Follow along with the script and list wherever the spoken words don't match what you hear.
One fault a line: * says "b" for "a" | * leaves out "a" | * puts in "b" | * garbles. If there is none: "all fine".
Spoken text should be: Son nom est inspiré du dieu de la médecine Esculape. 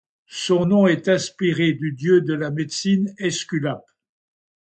all fine